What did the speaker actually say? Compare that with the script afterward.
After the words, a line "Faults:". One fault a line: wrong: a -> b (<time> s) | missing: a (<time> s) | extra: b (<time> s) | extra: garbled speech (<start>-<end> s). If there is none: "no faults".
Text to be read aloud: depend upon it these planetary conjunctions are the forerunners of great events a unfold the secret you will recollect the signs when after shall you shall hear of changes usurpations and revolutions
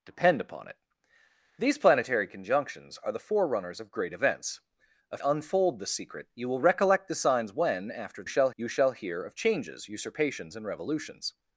depend upon it these planetary conjunctions are the forerunners of great events a unfold the secret you will recollect the signs when after shall you shall hear of changes usurpations and revolutions
Faults:
no faults